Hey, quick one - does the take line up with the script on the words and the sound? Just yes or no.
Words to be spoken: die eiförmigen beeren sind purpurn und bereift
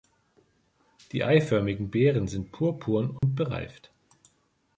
no